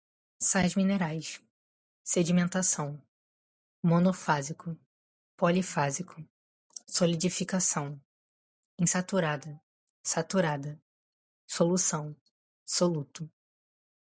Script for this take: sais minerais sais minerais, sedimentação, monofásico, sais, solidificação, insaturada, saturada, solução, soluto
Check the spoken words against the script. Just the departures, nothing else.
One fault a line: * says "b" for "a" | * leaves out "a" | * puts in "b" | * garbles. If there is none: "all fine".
* leaves out "sais minerais"
* says "polifásico" for "sais"